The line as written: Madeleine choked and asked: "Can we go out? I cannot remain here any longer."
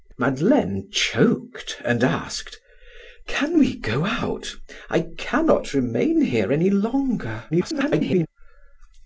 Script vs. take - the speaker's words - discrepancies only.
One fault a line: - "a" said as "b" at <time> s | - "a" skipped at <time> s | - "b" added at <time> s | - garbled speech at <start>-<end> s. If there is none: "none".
- garbled speech at 7.5-8.3 s